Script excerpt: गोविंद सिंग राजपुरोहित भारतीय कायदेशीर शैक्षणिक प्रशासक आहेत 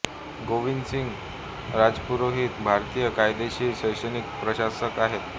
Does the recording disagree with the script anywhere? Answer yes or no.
no